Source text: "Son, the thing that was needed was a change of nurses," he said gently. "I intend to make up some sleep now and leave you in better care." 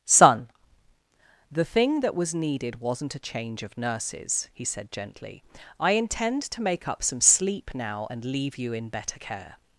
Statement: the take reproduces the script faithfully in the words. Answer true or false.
false